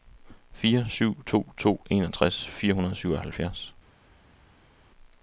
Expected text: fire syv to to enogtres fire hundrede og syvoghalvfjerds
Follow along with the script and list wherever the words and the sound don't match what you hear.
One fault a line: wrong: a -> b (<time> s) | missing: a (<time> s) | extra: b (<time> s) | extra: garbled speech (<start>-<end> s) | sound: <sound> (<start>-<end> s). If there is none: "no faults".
no faults